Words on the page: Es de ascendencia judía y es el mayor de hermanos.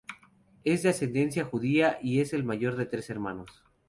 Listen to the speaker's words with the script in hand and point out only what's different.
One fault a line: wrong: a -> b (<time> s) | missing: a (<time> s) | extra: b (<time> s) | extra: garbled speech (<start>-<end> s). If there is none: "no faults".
extra: tres (2.9 s)